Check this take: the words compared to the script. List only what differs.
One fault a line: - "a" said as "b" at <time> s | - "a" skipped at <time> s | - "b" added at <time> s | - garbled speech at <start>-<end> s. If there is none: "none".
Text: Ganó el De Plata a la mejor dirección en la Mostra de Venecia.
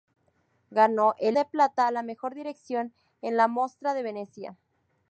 none